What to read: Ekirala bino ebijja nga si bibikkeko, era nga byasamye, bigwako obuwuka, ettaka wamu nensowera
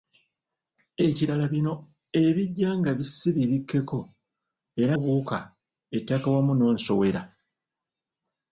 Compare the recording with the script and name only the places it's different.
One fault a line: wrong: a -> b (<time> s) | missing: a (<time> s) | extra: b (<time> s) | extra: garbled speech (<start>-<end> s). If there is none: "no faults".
missing: nga byasamye bigwako (5.0 s)